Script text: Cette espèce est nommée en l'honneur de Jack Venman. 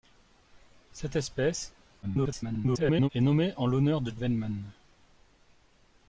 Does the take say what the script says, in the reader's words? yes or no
no